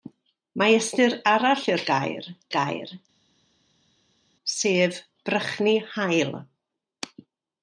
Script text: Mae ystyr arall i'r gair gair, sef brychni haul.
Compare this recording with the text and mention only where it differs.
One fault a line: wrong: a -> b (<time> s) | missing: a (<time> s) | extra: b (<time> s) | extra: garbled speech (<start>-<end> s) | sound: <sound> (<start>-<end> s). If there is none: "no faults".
no faults